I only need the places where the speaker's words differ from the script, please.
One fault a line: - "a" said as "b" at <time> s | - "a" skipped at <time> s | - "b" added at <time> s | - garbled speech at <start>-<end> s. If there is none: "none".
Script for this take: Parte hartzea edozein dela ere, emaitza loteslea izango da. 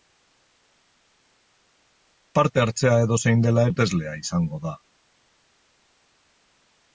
- "ere emaitza" skipped at 3.7 s